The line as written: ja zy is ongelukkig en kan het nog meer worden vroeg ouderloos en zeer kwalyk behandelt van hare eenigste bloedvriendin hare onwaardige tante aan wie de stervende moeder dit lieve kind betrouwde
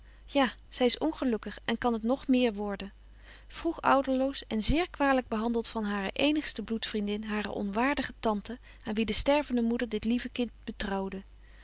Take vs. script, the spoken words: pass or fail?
pass